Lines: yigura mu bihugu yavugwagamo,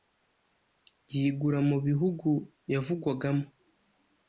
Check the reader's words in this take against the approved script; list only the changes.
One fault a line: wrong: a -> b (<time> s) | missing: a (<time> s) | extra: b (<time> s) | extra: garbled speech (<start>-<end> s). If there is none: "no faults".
no faults